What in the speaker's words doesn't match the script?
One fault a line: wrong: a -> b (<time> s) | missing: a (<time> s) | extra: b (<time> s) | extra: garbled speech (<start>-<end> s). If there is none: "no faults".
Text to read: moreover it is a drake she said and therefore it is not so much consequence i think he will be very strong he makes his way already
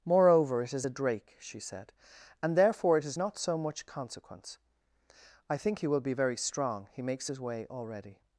no faults